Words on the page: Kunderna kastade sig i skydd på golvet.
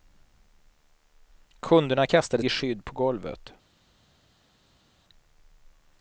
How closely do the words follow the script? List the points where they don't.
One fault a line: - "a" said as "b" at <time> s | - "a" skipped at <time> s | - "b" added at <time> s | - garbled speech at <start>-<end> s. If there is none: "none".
- "sig" skipped at 2.4 s